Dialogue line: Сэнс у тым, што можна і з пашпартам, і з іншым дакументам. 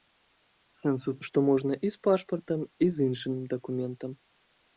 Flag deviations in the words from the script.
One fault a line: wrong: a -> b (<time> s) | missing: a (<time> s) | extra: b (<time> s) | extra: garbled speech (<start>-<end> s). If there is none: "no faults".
missing: тым (1.1 s)